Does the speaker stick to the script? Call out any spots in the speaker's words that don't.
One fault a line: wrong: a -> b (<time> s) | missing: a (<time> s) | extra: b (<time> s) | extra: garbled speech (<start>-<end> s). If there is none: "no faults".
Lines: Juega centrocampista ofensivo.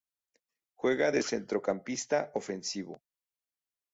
extra: de (1.1 s)